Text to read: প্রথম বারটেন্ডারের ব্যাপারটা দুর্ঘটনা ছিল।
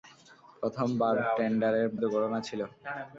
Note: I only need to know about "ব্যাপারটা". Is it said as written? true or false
false